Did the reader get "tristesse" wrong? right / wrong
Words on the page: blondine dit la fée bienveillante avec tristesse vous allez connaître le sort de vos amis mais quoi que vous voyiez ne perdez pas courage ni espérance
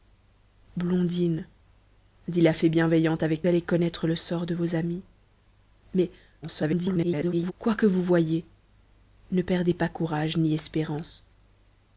wrong